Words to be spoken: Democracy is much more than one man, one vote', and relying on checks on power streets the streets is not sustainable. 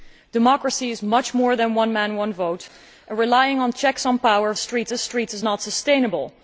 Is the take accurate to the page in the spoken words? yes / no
yes